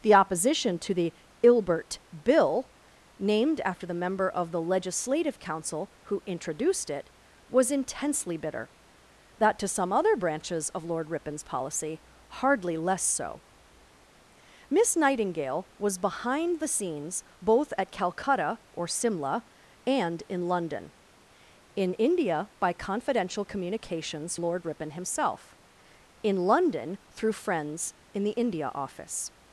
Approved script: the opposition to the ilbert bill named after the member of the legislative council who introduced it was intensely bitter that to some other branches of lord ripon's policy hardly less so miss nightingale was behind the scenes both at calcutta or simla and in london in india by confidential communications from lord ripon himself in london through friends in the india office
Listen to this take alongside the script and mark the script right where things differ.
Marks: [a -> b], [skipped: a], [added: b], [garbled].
the opposition to the ilbert bill named after the member of the legislative council who introduced it was intensely bitter that to some other branches of lord ripon's policy hardly less so miss nightingale was behind the scenes both at calcutta or simla and in london in india by confidential communications [skipped: from] lord ripon himself in london through friends in the india office